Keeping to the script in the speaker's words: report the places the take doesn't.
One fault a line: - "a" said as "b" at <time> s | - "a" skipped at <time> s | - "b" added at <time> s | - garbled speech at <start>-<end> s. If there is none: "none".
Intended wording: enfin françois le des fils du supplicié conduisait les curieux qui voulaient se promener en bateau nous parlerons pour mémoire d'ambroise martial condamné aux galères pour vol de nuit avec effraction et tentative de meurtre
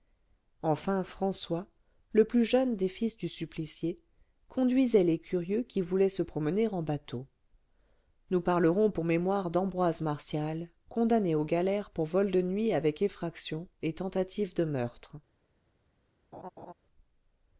- "plus jeune" added at 2.2 s